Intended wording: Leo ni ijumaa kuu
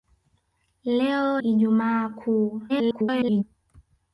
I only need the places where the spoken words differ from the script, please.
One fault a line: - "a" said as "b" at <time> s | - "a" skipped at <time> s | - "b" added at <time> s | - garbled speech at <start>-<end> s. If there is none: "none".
- "ni" skipped at 1.4 s
- garbled speech at 2.7-3.4 s